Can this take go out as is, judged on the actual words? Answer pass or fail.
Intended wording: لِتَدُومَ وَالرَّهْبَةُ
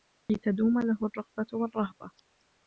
fail